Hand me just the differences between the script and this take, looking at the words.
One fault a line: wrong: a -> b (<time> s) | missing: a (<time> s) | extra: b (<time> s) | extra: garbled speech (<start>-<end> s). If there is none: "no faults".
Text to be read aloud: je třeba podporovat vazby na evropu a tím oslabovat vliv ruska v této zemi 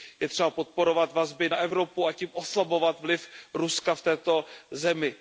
no faults